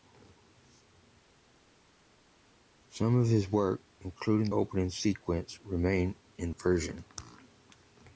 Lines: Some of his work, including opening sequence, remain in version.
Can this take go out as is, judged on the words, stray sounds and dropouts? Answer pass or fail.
pass